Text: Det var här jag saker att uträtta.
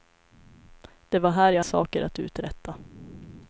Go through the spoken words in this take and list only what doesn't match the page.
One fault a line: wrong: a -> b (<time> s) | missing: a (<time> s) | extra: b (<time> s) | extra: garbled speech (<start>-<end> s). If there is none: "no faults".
no faults